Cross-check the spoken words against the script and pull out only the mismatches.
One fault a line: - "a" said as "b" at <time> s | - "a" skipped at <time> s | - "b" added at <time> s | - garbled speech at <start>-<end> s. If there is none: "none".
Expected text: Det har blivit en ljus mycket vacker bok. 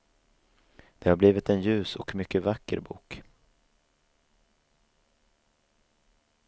- "och" added at 1.9 s